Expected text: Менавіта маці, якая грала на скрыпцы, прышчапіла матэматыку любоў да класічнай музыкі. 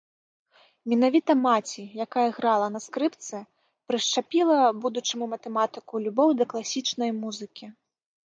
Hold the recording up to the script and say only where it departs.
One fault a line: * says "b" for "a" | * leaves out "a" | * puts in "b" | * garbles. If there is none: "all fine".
* puts in "будучаму"